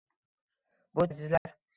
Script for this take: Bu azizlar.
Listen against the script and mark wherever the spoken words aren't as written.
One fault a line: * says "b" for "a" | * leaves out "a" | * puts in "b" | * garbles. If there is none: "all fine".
all fine